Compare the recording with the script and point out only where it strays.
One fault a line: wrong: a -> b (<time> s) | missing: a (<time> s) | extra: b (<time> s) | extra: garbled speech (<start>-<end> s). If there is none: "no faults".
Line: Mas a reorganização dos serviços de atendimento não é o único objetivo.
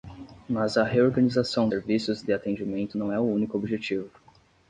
missing: dos (1.7 s)